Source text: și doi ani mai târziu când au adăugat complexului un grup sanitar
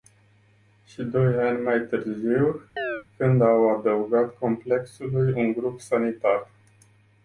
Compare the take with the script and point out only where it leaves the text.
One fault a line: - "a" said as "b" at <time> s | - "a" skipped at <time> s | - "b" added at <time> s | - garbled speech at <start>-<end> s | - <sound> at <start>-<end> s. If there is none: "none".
- chirp at 2.8-3.0 s